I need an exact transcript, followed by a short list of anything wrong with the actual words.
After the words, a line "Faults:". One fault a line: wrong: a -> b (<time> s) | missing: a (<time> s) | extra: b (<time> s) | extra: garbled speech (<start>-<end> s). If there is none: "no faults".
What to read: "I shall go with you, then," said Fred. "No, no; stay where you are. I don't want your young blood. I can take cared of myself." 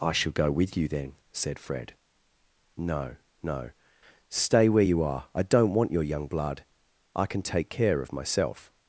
"I shall go with you, then," said Fred. "No, no; stay where you are. I don't want your young blood. I can take care of myself."
Faults:
wrong: cared -> care (7.7 s)